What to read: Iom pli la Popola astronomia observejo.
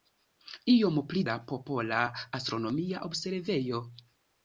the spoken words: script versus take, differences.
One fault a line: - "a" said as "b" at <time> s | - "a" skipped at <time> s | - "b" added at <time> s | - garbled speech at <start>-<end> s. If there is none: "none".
none